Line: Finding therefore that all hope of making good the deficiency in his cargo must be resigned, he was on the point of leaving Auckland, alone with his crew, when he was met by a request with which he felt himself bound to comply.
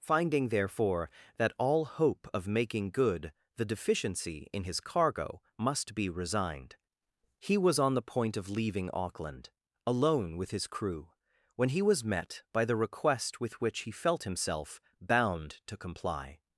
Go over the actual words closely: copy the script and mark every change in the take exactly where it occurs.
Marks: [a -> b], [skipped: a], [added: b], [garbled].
Finding therefore that all hope of making good the deficiency in his cargo must be resigned, he was on the point of leaving Auckland, alone with his crew, when he was met by [a -> the] request with which he felt himself bound to comply.